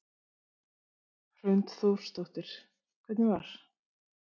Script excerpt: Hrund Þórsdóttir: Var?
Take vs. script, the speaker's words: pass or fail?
fail